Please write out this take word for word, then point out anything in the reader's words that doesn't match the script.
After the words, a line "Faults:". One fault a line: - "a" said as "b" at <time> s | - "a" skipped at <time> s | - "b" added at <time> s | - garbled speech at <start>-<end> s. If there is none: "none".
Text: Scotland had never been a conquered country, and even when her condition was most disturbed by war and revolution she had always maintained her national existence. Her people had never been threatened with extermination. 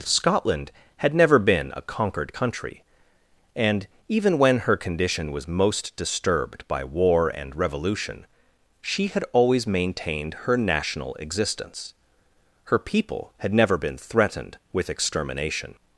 Scotland had never been a conquered country, and even when her condition was most disturbed by war and revolution she had always maintained her national existence. Her people had never been threatened with extermination.
Faults:
none